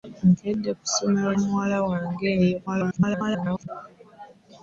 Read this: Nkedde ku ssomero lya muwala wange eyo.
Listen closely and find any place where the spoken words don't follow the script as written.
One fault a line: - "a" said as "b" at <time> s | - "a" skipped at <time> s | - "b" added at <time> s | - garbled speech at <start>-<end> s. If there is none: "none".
- "lya" skipped at 1.3 s
- garbled speech at 2.7-3.7 s